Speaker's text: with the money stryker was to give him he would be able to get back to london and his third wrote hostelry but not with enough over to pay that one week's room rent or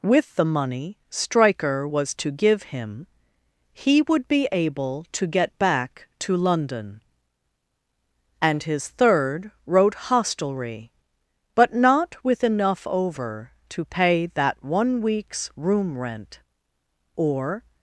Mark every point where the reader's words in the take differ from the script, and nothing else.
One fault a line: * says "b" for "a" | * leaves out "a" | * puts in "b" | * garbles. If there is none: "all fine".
all fine